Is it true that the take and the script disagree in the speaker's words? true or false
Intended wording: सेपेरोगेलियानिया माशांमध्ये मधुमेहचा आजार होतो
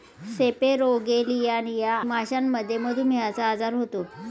false